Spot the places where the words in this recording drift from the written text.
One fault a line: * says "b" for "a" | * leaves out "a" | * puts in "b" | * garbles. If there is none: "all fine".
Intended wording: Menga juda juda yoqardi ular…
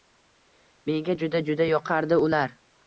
all fine